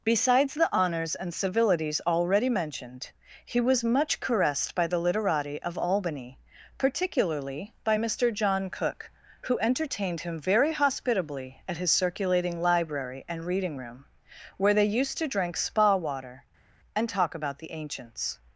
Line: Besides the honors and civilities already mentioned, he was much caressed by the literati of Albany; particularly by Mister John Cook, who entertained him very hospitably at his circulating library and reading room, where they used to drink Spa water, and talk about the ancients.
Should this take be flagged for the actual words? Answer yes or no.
no